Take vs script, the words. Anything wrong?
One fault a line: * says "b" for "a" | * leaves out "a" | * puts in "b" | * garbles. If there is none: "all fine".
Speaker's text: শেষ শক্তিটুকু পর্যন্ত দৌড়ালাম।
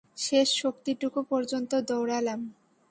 all fine